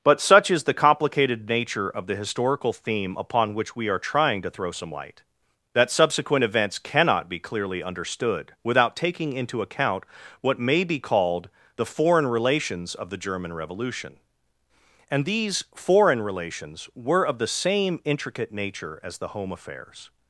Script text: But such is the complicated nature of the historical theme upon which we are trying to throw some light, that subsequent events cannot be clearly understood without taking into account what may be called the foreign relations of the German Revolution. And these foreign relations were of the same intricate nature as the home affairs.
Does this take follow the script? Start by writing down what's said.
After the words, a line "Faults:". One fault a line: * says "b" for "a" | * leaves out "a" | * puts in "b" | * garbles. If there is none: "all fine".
But such is the complicated nature of the historical theme upon which we are trying to throw some light, that subsequent events cannot be clearly understood without taking into account what may be called the foreign relations of the German Revolution. And these foreign relations were of the same intricate nature as the home affairs.
Faults:
all fine